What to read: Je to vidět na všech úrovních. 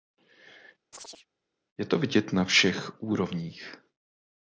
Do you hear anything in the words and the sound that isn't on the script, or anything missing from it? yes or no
yes